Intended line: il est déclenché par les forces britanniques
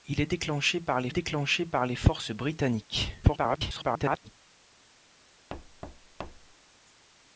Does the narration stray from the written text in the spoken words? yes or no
yes